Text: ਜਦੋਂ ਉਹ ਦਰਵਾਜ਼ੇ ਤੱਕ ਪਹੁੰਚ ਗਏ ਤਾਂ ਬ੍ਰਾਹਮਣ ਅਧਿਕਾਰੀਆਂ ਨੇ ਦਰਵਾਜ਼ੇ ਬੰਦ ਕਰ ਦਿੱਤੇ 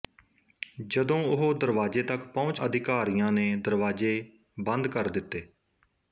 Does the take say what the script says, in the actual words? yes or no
no